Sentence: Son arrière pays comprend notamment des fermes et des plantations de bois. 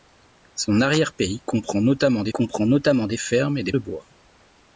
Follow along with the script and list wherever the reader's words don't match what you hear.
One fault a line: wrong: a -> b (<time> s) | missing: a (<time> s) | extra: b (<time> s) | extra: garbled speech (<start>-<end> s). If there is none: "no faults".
extra: comprend notamment des (2.3 s)
missing: plantations (3.7 s)